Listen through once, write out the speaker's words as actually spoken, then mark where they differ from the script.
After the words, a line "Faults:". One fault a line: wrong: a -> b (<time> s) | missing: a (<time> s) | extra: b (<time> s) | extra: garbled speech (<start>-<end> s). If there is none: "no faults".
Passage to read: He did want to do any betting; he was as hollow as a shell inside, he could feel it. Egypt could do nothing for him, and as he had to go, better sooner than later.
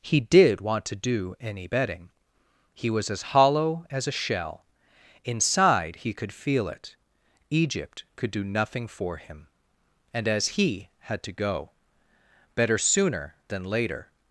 He did want to do any betting; he was as hollow as a shell inside, he could feel it. Egypt could do nothing for him, and as he had to go, better sooner than later.
Faults:
no faults